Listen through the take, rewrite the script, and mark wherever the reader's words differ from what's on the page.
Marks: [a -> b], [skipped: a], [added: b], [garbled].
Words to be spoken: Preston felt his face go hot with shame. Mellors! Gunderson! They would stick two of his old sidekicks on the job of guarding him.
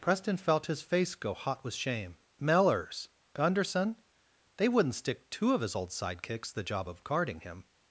Preston felt his face go hot with shame. Mellors! Gunderson! They [would -> wouldn't] stick two of his old sidekicks [skipped: on] the job of guarding him.